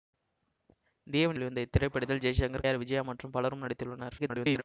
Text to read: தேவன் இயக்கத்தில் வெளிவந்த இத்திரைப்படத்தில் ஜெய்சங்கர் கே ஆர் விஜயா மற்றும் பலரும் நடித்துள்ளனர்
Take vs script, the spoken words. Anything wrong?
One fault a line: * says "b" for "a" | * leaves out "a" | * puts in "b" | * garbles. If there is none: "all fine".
* leaves out "இயக்கத்தில்"
* leaves out "கே"
* garbles